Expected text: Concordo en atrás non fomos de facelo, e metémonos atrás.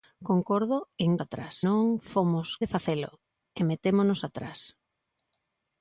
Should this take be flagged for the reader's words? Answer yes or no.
no